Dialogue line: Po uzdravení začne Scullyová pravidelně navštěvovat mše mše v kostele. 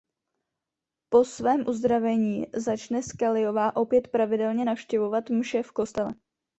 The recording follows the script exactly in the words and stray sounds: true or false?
false